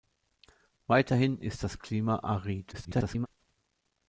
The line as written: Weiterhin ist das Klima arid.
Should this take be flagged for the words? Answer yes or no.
yes